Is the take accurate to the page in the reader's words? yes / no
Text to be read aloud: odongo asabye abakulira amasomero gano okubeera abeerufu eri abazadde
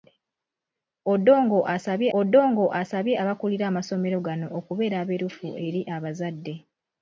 no